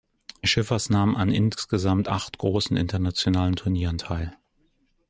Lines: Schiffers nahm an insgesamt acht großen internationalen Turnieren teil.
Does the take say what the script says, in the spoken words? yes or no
yes